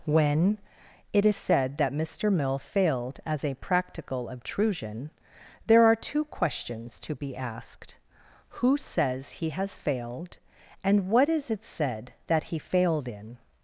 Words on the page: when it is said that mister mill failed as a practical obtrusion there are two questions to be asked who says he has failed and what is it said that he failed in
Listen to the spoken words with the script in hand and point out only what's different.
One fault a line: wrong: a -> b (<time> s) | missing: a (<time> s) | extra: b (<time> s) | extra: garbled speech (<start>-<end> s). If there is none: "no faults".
no faults